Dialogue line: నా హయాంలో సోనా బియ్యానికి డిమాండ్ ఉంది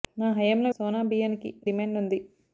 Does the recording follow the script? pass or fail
pass